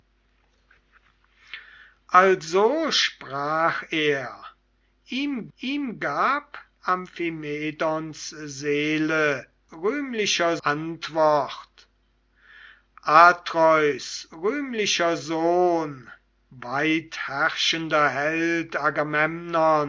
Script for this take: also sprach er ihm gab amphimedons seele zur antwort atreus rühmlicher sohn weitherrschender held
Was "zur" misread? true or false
true